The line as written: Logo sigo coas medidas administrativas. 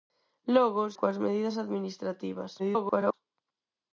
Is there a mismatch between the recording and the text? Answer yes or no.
yes